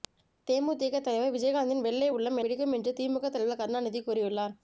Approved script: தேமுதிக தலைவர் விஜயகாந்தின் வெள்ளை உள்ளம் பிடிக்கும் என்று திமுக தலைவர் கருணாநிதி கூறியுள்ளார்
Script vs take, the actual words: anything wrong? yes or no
no